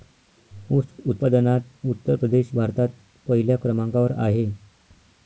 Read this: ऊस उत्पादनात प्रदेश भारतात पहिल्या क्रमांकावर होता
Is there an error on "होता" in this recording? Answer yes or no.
yes